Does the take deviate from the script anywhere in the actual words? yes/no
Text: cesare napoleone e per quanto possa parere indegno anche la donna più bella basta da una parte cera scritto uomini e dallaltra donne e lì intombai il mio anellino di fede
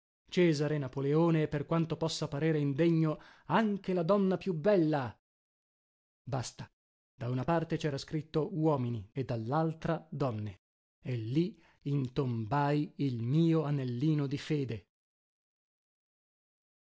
no